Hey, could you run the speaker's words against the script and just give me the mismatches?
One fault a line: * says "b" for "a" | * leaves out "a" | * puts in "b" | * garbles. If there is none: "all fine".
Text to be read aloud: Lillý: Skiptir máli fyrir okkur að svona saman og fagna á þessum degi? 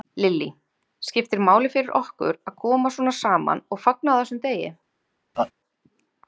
* puts in "koma"